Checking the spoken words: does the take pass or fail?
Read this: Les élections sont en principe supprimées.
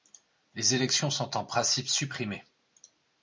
pass